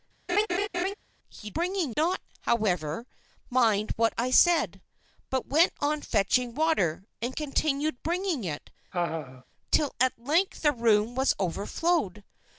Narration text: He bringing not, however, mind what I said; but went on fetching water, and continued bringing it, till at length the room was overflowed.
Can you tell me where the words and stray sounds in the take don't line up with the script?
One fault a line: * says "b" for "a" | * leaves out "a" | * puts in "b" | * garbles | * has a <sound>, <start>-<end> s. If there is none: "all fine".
* has a laugh, 0.3-0.9 s
* has a laugh, 8.9-9.4 s